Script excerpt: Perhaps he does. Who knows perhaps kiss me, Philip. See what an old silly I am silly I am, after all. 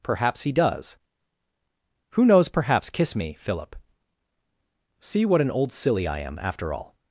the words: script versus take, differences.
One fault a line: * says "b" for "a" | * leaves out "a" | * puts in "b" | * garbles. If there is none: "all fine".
* leaves out "silly I am"